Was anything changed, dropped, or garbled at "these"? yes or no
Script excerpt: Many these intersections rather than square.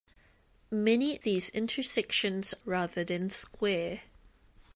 no